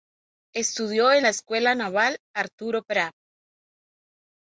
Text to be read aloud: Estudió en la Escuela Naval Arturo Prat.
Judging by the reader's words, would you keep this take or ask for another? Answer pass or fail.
pass